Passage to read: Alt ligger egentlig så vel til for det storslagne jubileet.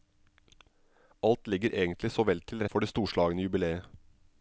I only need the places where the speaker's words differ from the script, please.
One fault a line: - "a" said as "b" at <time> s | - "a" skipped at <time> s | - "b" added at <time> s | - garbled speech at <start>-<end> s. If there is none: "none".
none